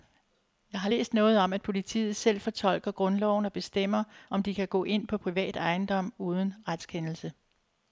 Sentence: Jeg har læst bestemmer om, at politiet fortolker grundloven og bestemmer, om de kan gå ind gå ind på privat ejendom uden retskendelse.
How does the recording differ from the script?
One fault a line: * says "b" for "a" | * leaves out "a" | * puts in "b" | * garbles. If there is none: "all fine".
* says "noget" for "bestemmer"
* puts in "selv"
* leaves out "gå ind"